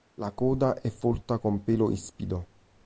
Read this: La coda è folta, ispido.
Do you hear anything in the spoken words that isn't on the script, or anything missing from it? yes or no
yes